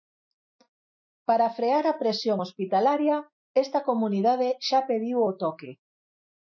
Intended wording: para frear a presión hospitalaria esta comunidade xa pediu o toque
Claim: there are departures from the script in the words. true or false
false